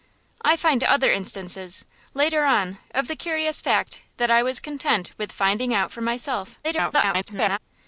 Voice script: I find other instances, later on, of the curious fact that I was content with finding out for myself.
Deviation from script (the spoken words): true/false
true